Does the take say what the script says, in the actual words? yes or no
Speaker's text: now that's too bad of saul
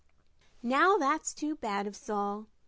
yes